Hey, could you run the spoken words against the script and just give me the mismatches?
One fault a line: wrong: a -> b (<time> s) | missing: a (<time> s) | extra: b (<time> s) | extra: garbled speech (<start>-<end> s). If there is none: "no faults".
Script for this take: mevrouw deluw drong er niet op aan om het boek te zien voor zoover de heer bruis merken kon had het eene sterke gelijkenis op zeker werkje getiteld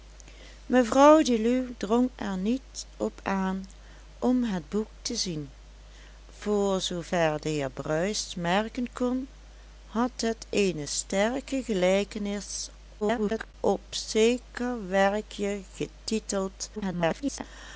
extra: garbled speech (13.0-13.5 s)
extra: garbled speech (16.8-17.4 s)